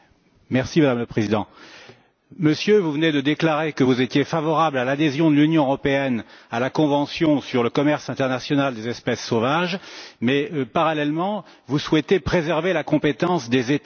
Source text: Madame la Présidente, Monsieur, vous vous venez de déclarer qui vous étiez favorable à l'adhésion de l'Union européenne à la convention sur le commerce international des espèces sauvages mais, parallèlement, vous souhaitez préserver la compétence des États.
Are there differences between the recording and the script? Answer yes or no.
yes